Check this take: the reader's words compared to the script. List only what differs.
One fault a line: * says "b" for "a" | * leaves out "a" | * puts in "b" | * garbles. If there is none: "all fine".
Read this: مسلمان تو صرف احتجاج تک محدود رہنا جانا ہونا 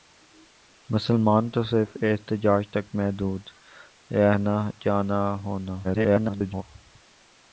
* garbles